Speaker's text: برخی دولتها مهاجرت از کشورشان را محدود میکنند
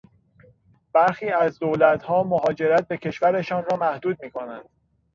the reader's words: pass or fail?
fail